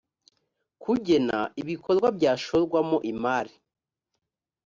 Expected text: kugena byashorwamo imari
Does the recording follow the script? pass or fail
fail